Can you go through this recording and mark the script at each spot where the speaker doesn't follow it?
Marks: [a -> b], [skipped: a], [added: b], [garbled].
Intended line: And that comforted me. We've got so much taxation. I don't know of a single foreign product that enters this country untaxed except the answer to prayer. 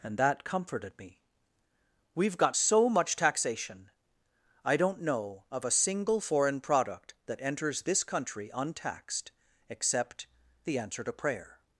And that comforted me. We've got so much taxation. I don't know of a single foreign product that enters this country untaxed except the answer to prayer.